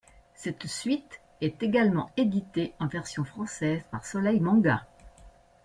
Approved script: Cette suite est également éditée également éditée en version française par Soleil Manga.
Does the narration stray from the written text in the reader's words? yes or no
yes